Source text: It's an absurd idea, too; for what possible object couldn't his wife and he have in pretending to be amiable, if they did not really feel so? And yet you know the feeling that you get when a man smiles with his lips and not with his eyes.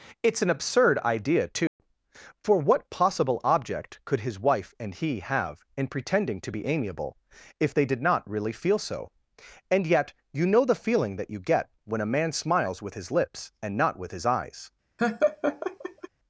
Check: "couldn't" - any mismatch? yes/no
yes